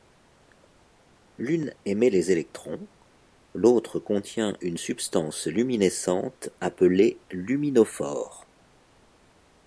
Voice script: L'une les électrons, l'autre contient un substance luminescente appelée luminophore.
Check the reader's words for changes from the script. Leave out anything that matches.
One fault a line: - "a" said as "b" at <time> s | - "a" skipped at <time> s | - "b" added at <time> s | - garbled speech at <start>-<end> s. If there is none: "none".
- "émet" added at 1.9 s
- "un" said as "une" at 4.6 s